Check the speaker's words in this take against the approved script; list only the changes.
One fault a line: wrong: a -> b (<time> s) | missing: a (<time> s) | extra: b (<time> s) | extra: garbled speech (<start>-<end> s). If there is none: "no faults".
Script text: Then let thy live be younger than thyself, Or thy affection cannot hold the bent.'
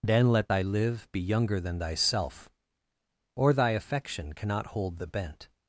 no faults